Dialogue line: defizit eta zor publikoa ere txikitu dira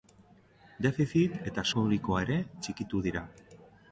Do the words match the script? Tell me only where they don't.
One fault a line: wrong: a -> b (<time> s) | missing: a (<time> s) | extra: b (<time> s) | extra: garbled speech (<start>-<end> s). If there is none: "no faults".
missing: zor (1.7 s)